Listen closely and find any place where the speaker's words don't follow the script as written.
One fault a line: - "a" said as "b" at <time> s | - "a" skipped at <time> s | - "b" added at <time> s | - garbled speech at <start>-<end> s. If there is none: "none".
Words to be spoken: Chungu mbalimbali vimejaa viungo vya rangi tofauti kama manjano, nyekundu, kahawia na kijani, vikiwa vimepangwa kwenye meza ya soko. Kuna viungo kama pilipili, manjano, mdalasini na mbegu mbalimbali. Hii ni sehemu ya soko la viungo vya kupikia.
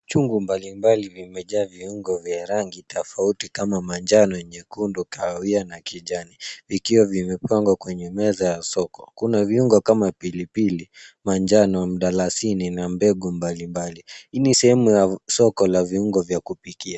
none